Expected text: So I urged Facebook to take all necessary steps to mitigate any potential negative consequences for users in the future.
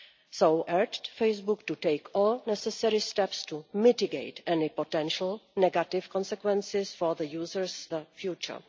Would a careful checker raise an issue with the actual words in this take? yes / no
yes